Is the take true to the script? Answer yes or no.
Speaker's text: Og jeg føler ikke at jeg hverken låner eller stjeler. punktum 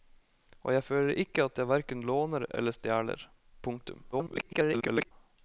no